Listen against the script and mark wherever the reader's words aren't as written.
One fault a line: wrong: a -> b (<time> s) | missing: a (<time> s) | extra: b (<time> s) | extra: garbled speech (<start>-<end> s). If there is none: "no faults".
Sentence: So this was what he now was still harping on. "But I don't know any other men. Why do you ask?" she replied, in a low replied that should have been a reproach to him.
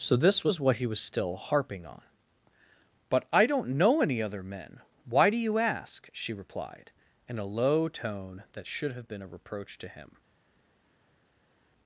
missing: now (0.9 s)
wrong: replied -> tone (7.9 s)